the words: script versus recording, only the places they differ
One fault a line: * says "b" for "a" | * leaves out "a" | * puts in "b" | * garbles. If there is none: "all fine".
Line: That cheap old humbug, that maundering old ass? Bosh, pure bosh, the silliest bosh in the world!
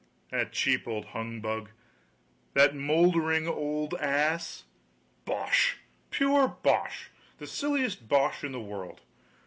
all fine